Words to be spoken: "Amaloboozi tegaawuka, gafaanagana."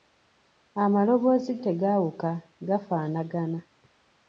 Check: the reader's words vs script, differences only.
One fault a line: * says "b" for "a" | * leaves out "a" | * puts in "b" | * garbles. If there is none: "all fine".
all fine